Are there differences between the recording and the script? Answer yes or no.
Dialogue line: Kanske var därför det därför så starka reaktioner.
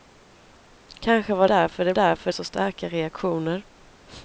no